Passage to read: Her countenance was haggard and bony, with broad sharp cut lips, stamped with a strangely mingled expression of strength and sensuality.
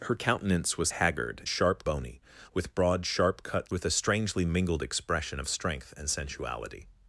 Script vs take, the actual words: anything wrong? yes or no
yes